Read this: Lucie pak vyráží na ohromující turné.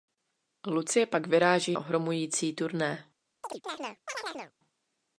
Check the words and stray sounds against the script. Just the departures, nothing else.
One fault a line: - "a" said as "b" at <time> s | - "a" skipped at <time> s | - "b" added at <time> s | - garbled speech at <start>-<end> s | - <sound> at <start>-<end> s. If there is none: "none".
- "na" skipped at 1.8 s
- chirp at 3.4-4.5 s